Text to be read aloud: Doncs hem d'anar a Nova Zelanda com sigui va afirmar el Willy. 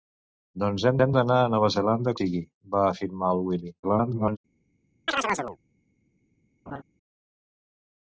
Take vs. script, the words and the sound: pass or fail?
fail